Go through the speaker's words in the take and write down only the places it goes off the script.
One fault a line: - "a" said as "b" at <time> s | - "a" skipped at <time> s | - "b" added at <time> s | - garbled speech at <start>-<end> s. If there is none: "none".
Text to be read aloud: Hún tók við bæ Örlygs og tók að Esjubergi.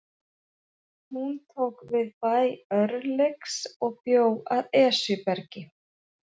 - "tók" said as "bjó" at 4.1 s